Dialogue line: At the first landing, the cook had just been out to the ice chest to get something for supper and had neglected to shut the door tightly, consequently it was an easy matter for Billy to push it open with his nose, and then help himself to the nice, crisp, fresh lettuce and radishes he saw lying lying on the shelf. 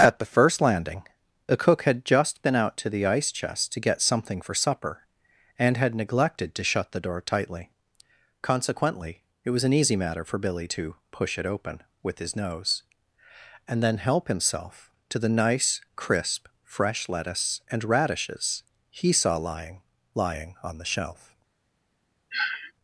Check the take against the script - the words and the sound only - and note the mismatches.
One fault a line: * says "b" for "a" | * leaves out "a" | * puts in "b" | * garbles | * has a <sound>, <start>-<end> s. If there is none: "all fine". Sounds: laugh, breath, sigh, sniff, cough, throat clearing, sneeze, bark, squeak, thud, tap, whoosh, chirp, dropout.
* has a sniff, 22.3-22.7 s